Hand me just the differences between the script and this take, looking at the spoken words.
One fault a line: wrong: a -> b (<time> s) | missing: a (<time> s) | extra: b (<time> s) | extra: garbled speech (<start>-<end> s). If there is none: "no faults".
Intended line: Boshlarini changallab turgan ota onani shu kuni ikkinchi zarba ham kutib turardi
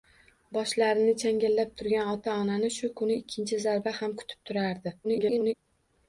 extra: garbled speech (5.0-5.5 s)